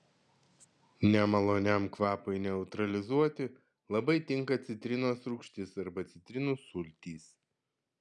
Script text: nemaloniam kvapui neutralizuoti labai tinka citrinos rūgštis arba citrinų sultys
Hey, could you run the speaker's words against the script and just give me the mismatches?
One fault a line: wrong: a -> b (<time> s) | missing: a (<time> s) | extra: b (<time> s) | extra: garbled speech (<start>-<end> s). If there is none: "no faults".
no faults